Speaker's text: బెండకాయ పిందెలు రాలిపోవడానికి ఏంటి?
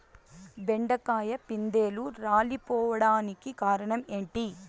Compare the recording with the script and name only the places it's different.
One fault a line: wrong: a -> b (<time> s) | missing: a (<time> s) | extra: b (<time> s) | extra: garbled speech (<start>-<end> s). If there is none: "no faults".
extra: కారణం (3.6 s)